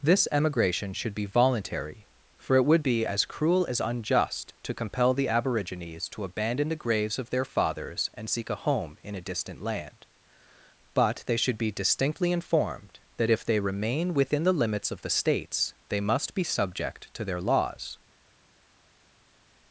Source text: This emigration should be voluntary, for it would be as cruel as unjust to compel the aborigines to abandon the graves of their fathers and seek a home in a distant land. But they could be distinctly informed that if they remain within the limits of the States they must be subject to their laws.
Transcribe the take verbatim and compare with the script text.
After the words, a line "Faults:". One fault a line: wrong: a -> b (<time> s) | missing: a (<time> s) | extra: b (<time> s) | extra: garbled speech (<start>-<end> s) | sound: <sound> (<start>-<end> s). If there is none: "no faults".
This emigration should be voluntary, for it would be as cruel as unjust to compel the aborigines to abandon the graves of their fathers and seek a home in a distant land. But they should be distinctly informed that if they remain within the limits of the States they must be subject to their laws.
Faults:
wrong: could -> should (11.4 s)